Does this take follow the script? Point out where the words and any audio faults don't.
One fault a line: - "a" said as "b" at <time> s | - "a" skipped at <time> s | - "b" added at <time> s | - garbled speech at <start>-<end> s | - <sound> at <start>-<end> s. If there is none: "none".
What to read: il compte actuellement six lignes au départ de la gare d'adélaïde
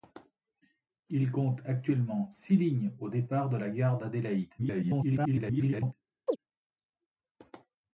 - garbled speech at 4.6-5.9 s
- chirp at 6.3-6.4 s